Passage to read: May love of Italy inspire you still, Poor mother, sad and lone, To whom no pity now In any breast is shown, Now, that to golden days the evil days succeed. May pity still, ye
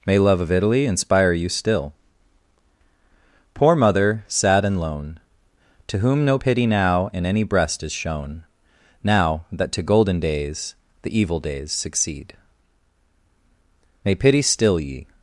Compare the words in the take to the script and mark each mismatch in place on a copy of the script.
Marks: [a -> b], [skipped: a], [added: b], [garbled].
May love of Italy inspire you still, Poor mother, sad and lone, To whom no pity now In any breast is shown, Now, that to golden days the evil days succeed. May pity still, ye